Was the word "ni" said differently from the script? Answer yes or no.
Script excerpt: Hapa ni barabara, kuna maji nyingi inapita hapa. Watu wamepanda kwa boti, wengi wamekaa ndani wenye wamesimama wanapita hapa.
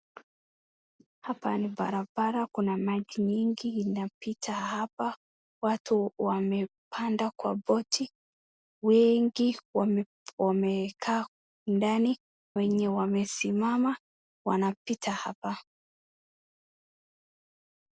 no